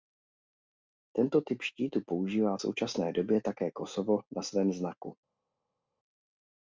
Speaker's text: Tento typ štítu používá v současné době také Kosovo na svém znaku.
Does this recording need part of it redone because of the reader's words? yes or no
no